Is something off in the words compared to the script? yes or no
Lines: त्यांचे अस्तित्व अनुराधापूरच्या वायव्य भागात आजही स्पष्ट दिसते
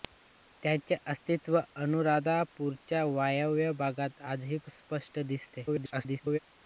yes